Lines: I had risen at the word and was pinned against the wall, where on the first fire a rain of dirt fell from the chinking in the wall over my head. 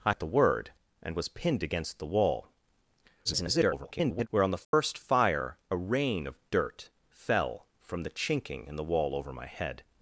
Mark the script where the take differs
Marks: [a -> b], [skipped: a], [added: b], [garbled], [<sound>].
I [skipped: had risen] at the word and was pinned against the wall, [garbled] where on the first [dropout] fire a rain of dirt fell from the chinking in the wall over my head.